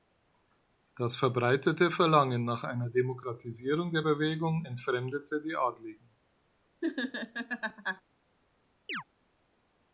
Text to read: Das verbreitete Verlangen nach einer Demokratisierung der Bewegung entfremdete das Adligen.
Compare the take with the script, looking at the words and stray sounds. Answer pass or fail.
fail